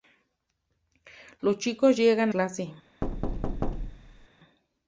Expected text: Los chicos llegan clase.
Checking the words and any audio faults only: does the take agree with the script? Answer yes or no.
no